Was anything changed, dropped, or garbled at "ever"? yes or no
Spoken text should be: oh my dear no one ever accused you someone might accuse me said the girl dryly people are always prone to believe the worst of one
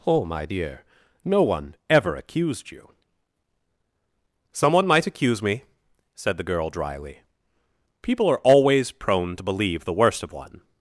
no